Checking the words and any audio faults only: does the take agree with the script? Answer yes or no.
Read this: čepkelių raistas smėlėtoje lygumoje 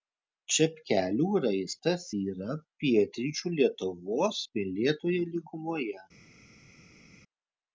no